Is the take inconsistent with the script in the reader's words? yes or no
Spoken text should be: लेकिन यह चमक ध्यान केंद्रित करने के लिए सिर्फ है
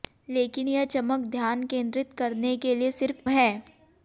no